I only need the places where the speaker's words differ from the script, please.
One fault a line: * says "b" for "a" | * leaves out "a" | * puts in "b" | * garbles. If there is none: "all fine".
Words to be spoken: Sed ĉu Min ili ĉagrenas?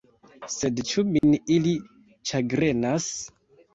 all fine